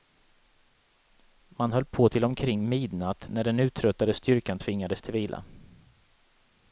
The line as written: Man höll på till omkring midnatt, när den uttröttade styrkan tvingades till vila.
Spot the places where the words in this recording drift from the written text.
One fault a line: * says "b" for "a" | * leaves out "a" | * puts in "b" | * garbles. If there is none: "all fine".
all fine